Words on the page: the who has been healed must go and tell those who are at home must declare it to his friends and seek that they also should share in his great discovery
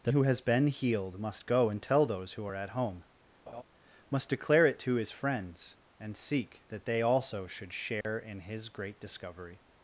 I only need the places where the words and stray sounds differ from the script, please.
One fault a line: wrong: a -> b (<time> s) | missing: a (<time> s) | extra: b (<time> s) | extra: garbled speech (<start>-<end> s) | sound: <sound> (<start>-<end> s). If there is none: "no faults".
sound: laugh (3.5-3.6 s)
sound: dropout (8.0-8.0 s)